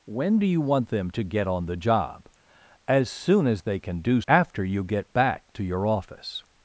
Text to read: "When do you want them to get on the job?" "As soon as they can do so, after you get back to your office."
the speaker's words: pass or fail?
fail